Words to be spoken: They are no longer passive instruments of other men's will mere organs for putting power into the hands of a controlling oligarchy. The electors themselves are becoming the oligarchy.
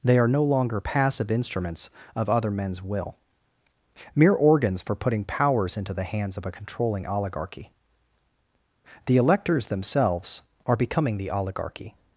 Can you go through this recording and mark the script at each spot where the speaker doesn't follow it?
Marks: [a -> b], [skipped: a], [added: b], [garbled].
They are no longer passive instruments of other men's will mere organs for putting [power -> powers] into the hands of a controlling oligarchy. The electors themselves are becoming the oligarchy.